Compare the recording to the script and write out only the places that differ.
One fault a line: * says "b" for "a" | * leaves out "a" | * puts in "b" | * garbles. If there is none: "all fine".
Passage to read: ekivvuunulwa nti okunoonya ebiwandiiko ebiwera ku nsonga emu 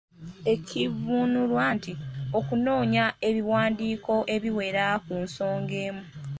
all fine